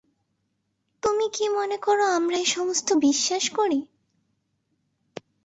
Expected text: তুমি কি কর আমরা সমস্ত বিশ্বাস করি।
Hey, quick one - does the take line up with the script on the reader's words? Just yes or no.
no